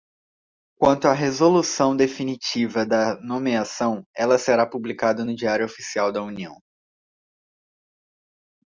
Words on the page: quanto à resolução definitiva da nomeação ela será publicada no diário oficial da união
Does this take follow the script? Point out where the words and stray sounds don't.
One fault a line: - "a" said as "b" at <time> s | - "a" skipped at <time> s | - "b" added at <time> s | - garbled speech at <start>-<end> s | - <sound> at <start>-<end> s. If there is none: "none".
none